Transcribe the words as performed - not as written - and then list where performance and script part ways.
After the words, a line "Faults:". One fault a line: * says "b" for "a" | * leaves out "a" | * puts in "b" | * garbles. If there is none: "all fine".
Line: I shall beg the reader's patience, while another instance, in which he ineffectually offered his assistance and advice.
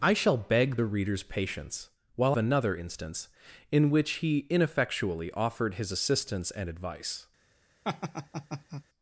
I shall beg the reader's patience, while another instance, in which he ineffectually offered his assistance and advice.
Faults:
all fine